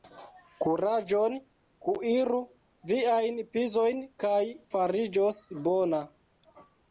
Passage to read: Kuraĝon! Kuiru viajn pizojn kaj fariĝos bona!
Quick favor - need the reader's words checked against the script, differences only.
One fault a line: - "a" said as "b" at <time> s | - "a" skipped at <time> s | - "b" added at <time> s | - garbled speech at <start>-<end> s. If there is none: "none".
none